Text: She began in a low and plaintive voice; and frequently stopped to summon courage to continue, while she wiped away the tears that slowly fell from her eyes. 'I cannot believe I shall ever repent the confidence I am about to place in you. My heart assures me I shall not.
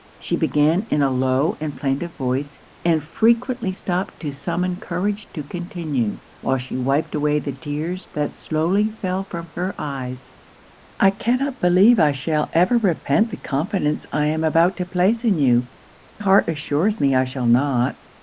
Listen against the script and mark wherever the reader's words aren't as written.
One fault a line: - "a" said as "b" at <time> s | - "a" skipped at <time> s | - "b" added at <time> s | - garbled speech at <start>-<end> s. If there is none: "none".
- "My" skipped at 15.7 s